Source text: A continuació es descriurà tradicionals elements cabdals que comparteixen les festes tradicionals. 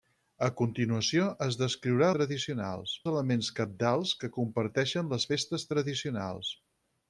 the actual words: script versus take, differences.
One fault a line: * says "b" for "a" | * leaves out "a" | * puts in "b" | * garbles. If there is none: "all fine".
all fine